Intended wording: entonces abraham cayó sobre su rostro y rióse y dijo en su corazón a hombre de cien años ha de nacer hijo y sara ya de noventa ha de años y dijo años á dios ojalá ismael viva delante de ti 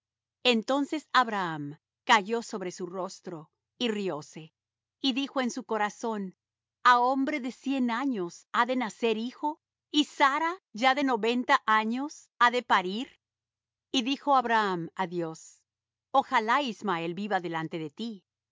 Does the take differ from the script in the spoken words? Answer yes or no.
yes